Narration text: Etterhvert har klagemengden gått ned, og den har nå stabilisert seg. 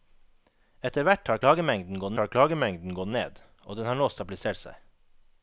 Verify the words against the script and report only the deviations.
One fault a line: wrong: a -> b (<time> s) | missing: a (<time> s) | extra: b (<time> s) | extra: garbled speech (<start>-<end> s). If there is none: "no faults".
extra: har klagemengden gått (2.2 s)